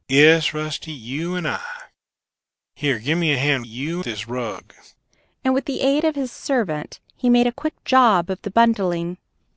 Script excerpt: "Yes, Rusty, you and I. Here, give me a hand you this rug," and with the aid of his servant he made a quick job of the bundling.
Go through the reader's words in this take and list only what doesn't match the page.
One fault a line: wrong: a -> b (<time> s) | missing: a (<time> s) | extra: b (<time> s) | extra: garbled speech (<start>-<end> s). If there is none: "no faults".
no faults